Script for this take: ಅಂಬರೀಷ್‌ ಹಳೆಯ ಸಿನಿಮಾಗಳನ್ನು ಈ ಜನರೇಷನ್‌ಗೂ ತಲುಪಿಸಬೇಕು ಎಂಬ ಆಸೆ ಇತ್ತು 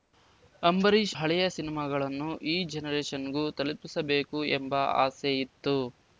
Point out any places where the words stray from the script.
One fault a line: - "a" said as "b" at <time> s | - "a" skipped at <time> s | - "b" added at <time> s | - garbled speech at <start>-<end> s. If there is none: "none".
none